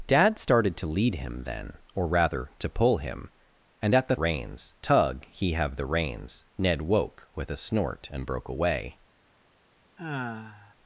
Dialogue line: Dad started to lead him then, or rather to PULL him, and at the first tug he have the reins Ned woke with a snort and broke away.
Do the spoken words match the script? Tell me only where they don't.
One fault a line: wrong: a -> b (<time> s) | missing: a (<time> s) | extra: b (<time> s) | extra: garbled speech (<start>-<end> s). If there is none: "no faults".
wrong: first -> reins (4.2 s)